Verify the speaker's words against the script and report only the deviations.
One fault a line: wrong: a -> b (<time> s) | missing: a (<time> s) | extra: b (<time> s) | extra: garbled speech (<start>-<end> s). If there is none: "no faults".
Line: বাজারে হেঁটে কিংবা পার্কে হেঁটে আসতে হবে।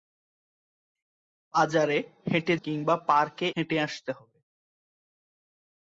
no faults